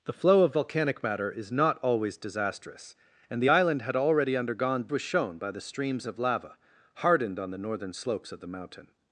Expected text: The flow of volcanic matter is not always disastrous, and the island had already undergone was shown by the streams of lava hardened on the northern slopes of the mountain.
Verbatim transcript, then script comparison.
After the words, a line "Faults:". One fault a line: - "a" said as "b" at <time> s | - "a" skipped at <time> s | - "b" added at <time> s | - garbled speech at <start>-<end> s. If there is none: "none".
The flow of volcanic matter is not always disastrous, and the island had already undergone was shown by the streams of lava hardened on the northern slopes of the mountain.
Faults:
none